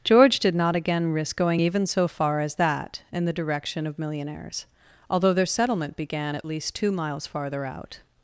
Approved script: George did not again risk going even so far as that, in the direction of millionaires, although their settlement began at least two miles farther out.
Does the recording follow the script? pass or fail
pass